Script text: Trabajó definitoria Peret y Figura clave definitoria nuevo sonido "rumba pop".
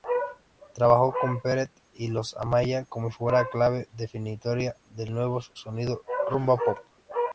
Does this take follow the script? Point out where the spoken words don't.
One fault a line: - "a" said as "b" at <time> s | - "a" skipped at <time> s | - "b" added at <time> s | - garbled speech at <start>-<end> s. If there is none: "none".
- "definitoria" said as "con" at 1.2 s
- "Los Amaya como" added at 2.1 s
- "del" added at 4.9 s